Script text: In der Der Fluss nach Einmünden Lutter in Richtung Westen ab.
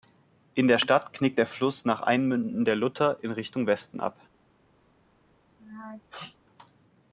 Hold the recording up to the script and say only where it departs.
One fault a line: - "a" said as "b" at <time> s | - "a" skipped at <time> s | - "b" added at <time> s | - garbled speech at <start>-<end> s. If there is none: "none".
- "Stadt knickt" added at 0.8 s
- "der" added at 2.6 s